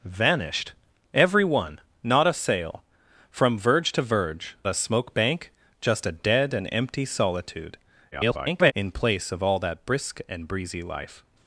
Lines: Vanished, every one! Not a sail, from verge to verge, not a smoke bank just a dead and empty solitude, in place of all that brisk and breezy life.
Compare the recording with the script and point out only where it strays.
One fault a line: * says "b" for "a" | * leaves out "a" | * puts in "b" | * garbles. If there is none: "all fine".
* leaves out "not"
* garbles